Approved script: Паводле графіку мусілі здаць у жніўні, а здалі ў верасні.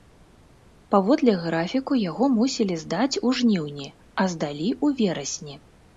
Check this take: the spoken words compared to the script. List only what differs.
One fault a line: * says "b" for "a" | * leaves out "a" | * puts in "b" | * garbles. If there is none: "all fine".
* puts in "яго"